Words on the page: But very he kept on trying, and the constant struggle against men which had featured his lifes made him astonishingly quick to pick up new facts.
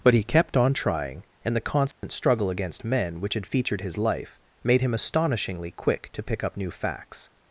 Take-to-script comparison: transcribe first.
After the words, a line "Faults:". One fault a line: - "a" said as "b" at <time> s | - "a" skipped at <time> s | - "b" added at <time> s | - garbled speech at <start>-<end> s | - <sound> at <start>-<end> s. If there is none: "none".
But he kept on trying, and the constant struggle against men which had featured his life made him astonishingly quick to pick up new facts.
Faults:
- "very" skipped at 0.1 s
- dropout at 1.9-2.0 s
- "lifes" said as "life" at 4.0 s